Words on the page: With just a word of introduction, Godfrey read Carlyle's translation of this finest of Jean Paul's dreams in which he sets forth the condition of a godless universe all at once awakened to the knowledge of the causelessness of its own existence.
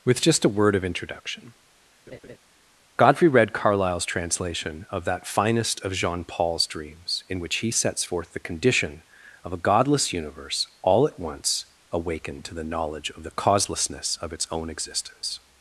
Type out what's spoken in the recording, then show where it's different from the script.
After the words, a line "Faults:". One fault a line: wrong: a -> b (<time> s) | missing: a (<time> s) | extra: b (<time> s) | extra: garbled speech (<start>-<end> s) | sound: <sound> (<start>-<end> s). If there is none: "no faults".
With just a word of introduction, Godfrey read Carlyle's translation of that finest of Jean Paul's dreams in which he sets forth the condition of a godless universe all at once awakened to the knowledge of the causelessness of its own existence.
Faults:
sound: laugh (2.1-2.4 s)
wrong: this -> that (5.0 s)